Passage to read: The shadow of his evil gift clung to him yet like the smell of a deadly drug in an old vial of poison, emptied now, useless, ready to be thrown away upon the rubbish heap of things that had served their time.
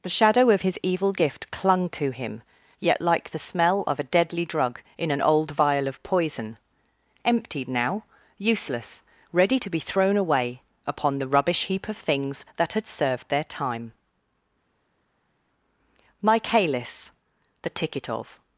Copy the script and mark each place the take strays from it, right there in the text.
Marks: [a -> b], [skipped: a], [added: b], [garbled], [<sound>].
The shadow of his evil gift clung to him yet like the smell of a deadly drug in an old vial of poison, emptied now, useless, ready to be thrown away upon the rubbish heap of things that had served their time. [added: Michaelis the ticket of]